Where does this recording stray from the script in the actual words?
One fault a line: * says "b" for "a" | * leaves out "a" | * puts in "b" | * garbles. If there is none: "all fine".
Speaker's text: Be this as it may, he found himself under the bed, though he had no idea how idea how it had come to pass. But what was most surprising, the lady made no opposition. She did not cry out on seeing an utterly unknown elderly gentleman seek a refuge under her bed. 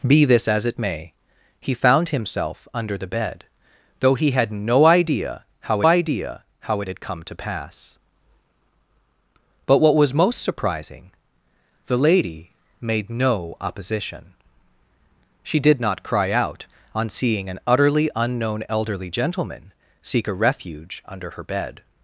all fine